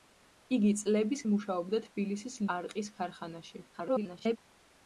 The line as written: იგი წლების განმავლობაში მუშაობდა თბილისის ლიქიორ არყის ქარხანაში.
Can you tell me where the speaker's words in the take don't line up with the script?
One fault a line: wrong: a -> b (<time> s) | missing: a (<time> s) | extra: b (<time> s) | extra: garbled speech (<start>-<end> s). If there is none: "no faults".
missing: განმავლობაში (1.2 s)
missing: ლიქიორ (2.4 s)
extra: garbled speech (3.7-4.4 s)